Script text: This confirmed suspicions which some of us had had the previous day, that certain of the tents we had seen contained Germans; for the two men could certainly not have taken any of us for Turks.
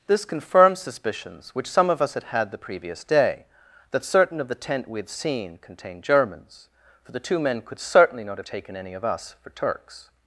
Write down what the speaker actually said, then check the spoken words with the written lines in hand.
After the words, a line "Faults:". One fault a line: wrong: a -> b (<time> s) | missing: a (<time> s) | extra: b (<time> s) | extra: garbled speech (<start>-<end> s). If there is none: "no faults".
This confirmed suspicions which some of us had had the previous day, that certain of the tent we had seen contained Germans; for the two men could certainly not have taken any of us for Turks.
Faults:
wrong: tents -> tent (4.5 s)